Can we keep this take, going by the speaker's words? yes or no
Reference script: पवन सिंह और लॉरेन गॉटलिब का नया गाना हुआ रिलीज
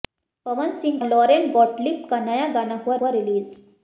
no